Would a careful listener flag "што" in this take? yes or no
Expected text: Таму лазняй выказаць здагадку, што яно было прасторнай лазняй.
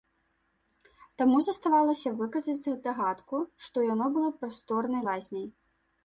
no